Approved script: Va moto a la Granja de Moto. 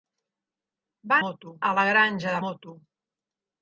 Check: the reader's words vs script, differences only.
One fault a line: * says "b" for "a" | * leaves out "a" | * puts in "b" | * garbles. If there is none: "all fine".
all fine